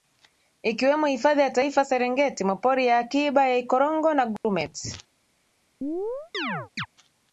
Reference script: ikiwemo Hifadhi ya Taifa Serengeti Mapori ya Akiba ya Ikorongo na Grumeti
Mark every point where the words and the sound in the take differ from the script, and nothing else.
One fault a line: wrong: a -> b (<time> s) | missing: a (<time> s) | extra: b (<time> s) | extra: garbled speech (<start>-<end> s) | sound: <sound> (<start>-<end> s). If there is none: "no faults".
sound: dropout (4.4-4.4 s)
sound: chirp (5.8-6.9 s)